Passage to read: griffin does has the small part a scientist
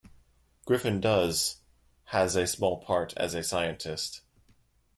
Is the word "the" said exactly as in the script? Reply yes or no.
no